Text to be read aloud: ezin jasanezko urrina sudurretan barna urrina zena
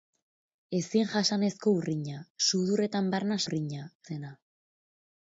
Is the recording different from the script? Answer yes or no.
no